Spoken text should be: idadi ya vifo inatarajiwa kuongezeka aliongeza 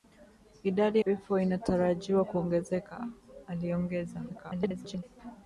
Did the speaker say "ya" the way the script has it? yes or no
no